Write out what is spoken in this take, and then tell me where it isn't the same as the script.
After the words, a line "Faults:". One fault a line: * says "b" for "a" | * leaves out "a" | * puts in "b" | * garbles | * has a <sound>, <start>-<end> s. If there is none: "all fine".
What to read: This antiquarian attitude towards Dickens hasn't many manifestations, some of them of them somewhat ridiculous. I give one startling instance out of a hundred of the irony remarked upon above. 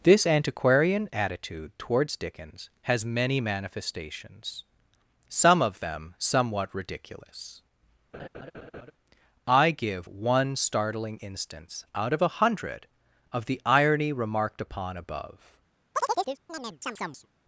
This antiquarian attitude towards Dickens has many manifestations, some of them somewhat ridiculous. I give one startling instance out of a hundred of the irony remarked upon above.
Faults:
* says "has" for "hasn't"
* leaves out "of them"
* has a laugh, 8.1-8.9 s
* has a chirp, 15.9-17.3 s